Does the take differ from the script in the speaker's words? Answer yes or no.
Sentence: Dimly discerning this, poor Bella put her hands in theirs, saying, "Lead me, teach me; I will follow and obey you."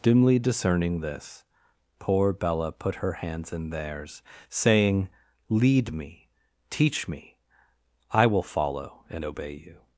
no